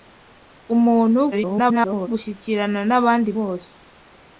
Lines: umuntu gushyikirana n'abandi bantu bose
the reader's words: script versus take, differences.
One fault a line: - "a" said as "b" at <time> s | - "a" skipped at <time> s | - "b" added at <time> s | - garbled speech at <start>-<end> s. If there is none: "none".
- garbled speech at 1.3-2.1 s
- "bantu" skipped at 3.3 s